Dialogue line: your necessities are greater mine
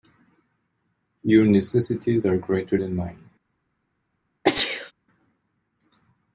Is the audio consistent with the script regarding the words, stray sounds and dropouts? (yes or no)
no